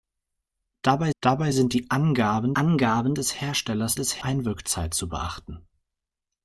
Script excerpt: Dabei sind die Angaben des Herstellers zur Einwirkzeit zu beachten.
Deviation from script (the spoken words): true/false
true